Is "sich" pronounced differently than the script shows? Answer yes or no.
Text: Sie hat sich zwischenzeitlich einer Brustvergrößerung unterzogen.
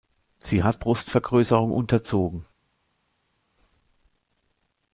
yes